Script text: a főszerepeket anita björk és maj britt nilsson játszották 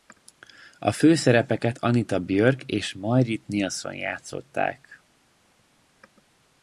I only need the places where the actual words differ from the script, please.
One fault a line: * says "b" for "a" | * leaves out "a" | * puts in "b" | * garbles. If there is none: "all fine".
all fine